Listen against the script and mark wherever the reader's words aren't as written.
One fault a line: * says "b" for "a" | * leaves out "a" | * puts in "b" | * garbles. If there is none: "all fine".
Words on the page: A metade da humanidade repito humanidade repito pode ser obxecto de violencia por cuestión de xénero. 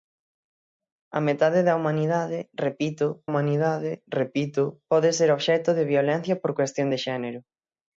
all fine